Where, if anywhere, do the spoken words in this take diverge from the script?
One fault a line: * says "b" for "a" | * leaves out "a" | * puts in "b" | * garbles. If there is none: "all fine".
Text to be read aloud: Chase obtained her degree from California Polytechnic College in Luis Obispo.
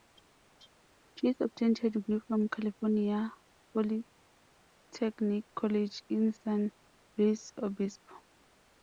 * puts in "San"